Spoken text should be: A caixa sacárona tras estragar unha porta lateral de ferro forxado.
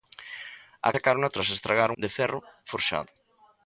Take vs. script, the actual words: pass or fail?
fail